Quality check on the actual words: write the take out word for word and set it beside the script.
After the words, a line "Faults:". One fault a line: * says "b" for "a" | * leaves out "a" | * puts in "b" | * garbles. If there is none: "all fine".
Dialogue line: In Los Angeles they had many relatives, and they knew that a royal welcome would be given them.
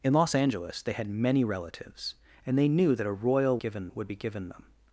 In Los Angeles they had many relatives, and they knew that a royal given would be given them.
Faults:
* says "given" for "welcome"